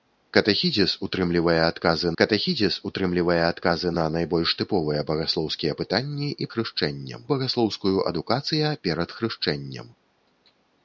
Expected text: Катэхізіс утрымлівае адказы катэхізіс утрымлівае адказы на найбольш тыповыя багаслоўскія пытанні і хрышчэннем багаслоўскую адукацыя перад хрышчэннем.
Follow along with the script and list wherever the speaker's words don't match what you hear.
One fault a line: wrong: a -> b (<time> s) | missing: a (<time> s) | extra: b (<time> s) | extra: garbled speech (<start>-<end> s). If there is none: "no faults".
no faults